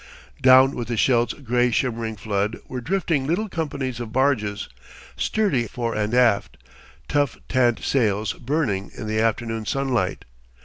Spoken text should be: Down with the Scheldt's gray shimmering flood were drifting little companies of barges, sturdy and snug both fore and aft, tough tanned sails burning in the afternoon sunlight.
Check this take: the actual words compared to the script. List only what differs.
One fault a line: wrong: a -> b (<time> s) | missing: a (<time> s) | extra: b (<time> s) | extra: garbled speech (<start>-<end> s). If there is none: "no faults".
missing: and snug both (5.7 s)